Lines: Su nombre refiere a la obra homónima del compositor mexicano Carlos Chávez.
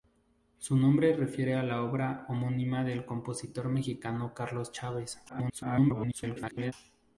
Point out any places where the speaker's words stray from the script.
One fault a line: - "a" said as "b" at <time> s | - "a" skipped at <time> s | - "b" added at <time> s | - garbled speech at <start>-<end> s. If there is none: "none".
- garbled speech at 5.3-6.7 s